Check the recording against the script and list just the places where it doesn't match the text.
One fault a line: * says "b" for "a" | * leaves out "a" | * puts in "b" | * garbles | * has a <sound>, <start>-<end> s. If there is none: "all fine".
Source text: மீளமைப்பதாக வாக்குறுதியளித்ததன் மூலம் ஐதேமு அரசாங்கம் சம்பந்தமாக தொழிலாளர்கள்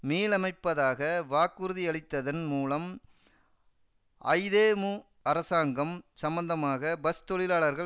* puts in "பஸ்"